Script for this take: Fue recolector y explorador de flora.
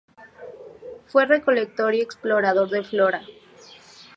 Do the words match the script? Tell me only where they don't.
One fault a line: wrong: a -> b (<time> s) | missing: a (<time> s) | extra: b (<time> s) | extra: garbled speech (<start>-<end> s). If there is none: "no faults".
no faults